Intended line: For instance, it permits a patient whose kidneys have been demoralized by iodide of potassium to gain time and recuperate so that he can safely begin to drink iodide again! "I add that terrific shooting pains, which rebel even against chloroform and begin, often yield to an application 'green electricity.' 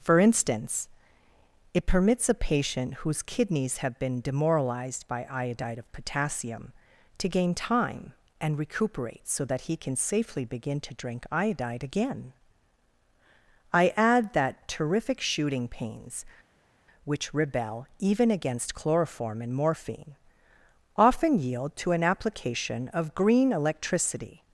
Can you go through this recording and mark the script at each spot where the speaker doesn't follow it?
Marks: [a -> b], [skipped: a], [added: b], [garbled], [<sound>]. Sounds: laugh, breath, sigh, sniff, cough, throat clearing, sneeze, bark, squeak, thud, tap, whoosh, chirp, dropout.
For instance, it permits a patient whose kidneys have been demoralized by iodide of potassium to gain time and recuperate so that he can safely begin to drink iodide again! "I add that terrific shooting pains, which rebel even against chloroform and [begin, -> morphine] often yield to an application [added: of] 'green electricity.'